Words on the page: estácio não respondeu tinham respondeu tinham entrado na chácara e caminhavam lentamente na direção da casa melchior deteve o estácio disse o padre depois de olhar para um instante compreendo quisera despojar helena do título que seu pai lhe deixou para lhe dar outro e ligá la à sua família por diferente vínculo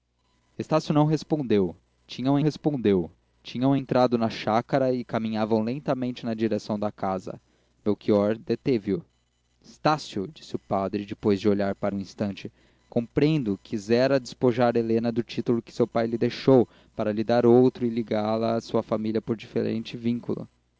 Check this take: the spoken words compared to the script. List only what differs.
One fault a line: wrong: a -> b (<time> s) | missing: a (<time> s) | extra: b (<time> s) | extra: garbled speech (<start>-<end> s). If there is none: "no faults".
no faults